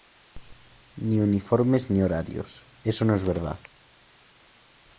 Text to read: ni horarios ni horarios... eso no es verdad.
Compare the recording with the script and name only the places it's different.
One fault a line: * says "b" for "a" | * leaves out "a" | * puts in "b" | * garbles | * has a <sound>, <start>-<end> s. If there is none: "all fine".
* says "uniformes" for "horarios"